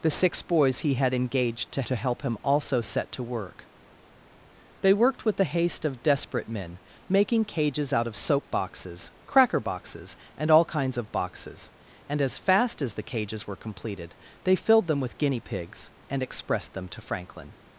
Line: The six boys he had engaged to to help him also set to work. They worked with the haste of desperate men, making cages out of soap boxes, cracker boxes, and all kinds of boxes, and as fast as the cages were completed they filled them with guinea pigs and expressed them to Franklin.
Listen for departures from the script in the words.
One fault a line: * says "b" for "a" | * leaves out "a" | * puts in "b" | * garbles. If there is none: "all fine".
all fine